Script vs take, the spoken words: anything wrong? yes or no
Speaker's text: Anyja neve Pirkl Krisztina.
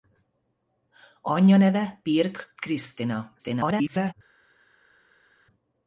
yes